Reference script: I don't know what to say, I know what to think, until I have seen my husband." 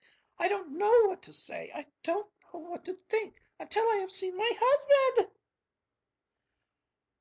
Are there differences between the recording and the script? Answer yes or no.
yes